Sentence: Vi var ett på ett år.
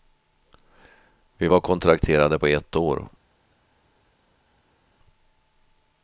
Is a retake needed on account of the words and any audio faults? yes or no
yes